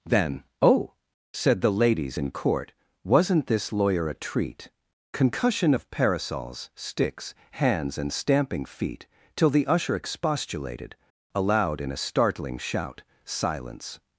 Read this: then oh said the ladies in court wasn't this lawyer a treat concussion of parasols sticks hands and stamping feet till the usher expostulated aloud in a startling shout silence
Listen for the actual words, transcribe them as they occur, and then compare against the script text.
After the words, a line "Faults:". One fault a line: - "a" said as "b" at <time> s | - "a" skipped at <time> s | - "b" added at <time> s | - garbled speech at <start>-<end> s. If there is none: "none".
then oh said the ladies in court wasn't this lawyer a treat concussion of parasols sticks hands and stamping feet till the usher expostulated aloud in a startling shout silence
Faults:
none